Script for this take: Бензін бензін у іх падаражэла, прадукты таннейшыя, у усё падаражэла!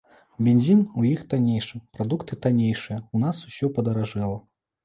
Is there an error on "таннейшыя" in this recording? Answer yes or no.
no